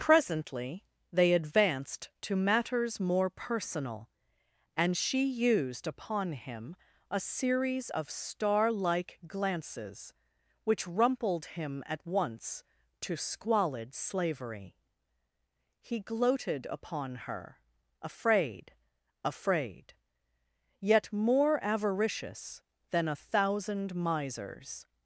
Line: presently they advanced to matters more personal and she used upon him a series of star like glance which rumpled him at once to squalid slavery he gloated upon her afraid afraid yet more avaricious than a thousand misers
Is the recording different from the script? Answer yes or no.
yes